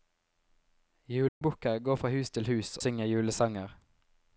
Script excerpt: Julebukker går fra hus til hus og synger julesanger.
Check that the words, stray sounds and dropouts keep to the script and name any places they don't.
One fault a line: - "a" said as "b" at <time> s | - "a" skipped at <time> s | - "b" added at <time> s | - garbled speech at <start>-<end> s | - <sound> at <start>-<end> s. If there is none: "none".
- dropout at 1.3-1.4 s
- "og" skipped at 2.8 s